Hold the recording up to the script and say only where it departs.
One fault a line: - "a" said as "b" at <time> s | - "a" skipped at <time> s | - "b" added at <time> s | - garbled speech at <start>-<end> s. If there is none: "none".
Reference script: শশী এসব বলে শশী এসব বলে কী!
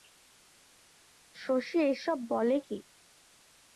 - "শশী এসব বলে" skipped at 2.6 s